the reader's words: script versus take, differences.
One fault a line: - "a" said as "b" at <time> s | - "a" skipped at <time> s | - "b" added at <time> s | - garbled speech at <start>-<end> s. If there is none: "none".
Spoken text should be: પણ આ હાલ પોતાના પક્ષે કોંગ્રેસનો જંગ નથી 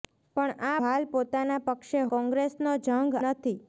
none